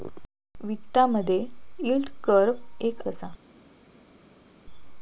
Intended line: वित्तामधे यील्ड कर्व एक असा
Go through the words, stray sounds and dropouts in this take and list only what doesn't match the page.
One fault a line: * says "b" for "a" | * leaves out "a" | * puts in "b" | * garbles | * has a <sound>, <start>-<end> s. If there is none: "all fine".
all fine